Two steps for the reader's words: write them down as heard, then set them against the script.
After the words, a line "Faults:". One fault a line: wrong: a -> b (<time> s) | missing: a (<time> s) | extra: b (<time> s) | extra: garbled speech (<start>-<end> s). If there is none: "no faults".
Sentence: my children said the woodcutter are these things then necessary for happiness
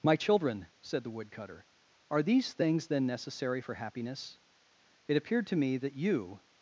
my children said the woodcutter are these things then necessary for happiness it appeared to me that you
Faults:
extra: it appeared to me that you (5.1 s)